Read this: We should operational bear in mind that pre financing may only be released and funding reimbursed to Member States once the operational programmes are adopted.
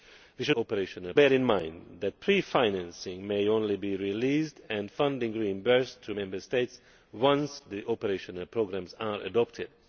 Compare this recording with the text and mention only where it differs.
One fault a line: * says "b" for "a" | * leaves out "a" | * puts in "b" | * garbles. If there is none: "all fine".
all fine